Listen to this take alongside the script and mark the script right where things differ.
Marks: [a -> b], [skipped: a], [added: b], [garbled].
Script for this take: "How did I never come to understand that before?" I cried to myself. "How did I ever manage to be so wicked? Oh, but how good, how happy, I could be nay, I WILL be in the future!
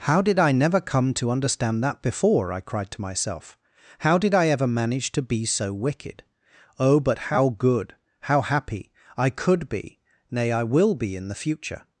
"How did I never come to understand that before?" I cried to myself. "How did I ever manage to be so wicked? Oh, but how good, how happy, I could be nay, I WILL be in the future!